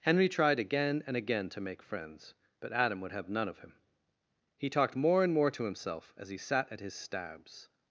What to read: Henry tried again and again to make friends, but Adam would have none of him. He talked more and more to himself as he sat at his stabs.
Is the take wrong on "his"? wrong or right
right